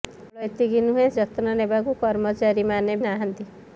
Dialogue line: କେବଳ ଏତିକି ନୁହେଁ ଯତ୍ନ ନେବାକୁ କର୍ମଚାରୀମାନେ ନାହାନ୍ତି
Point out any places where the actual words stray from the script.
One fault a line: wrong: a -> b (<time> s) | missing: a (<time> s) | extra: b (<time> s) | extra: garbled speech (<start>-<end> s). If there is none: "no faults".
no faults